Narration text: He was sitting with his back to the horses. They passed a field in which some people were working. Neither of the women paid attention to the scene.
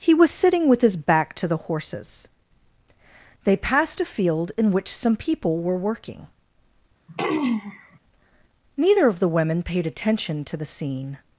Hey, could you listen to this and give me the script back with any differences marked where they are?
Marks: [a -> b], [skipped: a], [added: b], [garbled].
He was sitting with his back to the horses. They passed a field in which some people were working. Neither of the women paid attention to the scene.